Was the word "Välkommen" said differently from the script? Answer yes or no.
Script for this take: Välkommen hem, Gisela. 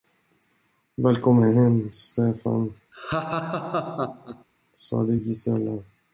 no